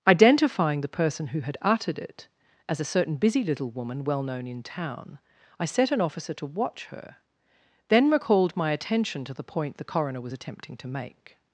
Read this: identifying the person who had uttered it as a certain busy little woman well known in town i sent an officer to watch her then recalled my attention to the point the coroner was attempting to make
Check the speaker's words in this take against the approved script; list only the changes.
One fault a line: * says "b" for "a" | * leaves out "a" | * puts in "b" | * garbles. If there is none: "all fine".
* says "set" for "sent"